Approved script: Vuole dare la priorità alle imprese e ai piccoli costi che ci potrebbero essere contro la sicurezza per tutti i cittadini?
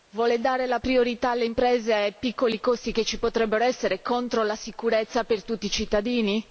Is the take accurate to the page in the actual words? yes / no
yes